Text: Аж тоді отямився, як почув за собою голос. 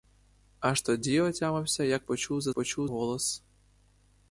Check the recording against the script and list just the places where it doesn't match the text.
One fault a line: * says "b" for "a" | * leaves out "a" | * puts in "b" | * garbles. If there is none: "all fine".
* says "почув" for "собою"